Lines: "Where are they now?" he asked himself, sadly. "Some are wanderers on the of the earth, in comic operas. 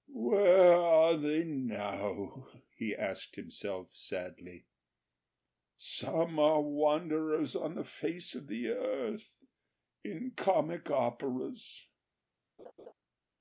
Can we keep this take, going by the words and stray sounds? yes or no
no